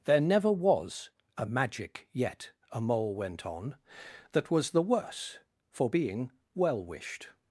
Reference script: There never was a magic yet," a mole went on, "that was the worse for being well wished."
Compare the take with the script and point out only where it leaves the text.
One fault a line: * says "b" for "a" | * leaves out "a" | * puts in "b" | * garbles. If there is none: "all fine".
all fine